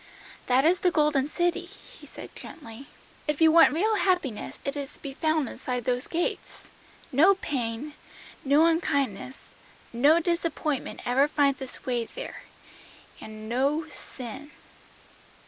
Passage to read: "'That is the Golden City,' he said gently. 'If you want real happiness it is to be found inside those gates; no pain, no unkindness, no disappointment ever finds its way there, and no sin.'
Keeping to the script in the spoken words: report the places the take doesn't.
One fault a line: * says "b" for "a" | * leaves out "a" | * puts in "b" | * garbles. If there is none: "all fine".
all fine